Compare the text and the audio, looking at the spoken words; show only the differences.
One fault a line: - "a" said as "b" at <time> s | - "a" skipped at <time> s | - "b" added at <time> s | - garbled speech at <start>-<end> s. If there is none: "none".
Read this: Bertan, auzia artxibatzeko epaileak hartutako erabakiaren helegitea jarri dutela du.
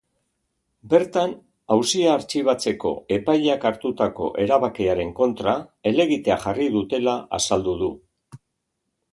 - "kontra" added at 5.2 s
- "azaldu" added at 7.4 s